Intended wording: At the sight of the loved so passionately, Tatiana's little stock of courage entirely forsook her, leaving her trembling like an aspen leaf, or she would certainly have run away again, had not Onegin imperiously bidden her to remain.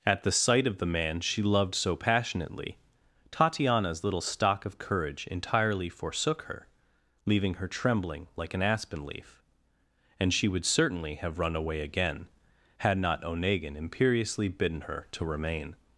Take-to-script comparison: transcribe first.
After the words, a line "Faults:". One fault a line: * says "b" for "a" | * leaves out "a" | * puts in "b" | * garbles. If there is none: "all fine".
At the sight of the man she loved so passionately, Tatiana's little stock of courage entirely forsook her, leaving her trembling like an aspen leaf, and she would certainly have run away again, had not Onegin imperiously bidden her to remain.
Faults:
* puts in "man she"
* says "and" for "or"